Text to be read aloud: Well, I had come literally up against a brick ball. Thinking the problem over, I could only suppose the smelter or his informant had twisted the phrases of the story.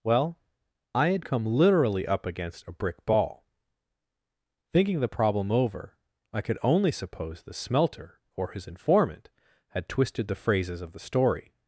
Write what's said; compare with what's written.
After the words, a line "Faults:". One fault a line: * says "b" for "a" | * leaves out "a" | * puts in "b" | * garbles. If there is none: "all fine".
Well, I had come literally up against a brick ball. Thinking the problem over, I could only suppose the smelter or his informant had twisted the phrases of the story.
Faults:
all fine